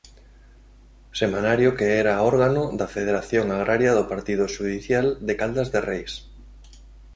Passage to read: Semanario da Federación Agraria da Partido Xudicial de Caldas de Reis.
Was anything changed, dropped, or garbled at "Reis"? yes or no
no